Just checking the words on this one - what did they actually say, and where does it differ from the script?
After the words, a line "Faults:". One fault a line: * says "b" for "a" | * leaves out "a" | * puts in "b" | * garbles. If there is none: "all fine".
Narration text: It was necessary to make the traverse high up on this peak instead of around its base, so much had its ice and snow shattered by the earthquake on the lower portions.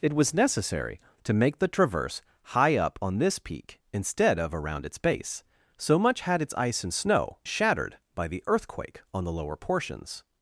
It was necessary to make the traverse high up on this peak instead of around its base, so much had its ice and snow shattered by the earthquake on the lower portions.
Faults:
all fine